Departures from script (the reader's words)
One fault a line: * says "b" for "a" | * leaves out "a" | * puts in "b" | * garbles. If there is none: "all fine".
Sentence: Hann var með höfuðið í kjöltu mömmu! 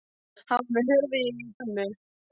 * leaves out "kjöltu"